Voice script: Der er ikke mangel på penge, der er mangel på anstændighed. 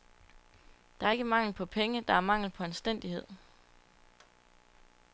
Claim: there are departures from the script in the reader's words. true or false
false